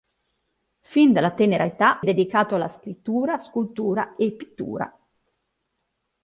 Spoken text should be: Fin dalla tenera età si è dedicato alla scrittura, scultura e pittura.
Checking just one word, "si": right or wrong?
wrong